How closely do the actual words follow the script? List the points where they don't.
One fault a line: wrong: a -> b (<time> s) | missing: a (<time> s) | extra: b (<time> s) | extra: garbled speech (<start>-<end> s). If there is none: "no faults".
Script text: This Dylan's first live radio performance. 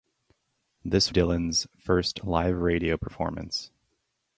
no faults